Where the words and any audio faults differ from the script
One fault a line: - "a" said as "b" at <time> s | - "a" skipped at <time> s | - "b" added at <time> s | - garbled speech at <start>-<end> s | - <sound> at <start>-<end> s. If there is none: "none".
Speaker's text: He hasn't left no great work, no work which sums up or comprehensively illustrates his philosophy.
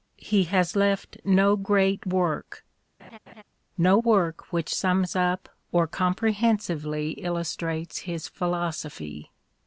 - "hasn't" said as "has" at 0.5 s
- laugh at 3.0-3.4 s